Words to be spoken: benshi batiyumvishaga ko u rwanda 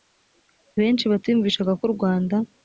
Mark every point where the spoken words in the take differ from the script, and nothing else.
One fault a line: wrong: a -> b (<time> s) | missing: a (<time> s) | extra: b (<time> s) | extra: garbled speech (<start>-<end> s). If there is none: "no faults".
no faults